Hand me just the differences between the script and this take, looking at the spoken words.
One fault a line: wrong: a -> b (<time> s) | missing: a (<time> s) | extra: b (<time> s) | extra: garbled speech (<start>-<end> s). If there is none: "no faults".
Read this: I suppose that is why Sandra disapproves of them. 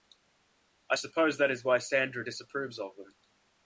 no faults